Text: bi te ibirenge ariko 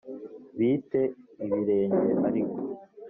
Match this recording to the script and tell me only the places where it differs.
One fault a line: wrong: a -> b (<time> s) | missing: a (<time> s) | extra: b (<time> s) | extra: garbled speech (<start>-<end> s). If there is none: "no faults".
no faults